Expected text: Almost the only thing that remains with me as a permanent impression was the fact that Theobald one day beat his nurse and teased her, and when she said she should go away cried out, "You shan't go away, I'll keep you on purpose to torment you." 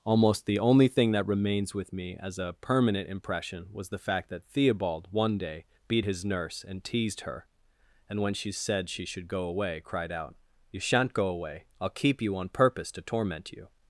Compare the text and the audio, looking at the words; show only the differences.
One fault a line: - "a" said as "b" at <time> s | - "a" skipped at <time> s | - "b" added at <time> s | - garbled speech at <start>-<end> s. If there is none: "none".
none